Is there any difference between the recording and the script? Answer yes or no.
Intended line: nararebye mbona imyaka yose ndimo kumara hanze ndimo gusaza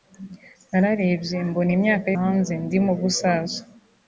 yes